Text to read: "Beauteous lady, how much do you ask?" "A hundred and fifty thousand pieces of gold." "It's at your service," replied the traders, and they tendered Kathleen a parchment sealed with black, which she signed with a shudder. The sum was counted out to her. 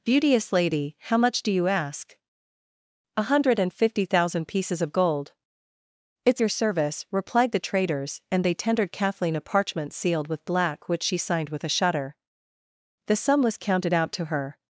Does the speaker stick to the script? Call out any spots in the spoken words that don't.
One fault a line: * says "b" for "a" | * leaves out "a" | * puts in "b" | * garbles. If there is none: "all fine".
* leaves out "at"